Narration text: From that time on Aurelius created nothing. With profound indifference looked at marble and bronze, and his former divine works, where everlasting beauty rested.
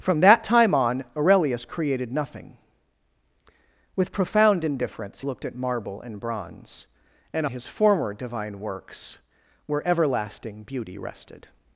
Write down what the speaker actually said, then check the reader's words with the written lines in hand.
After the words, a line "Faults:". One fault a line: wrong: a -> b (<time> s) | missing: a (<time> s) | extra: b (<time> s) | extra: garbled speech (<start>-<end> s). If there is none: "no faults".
From that time on Aurelius created nothing. With profound indifference looked at marble and bronze, and his former divine works, where everlasting beauty rested.
Faults:
no faults